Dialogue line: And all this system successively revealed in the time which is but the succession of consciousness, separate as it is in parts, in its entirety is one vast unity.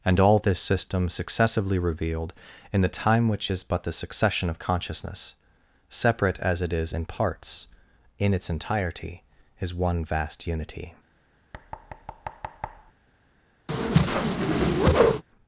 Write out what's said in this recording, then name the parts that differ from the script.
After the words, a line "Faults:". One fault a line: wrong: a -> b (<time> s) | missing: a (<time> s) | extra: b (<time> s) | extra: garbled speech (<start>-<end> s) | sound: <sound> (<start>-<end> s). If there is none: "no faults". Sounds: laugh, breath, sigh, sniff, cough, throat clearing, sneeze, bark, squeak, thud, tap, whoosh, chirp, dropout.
And all this system successively revealed in the time which is but the succession of consciousness, separate as it is in parts, in its entirety is one vast unity.
Faults:
sound: thud (11.5-12.9 s)
sound: whoosh (13.7-15.2 s)